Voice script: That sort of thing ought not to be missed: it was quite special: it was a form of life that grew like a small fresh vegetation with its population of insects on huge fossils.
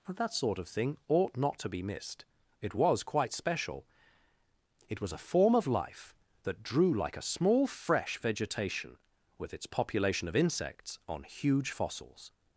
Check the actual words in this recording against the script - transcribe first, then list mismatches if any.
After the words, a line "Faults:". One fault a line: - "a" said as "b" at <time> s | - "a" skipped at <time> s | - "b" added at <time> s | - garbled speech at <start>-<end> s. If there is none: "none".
That sort of thing ought not to be missed: it was quite special: it was a form of life that drew like a small fresh vegetation with its population of insects on huge fossils.
Faults:
- "grew" said as "drew" at 6.6 s